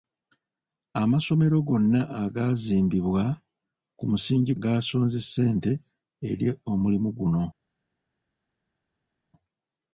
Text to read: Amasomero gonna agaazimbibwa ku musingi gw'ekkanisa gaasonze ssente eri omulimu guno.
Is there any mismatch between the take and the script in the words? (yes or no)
yes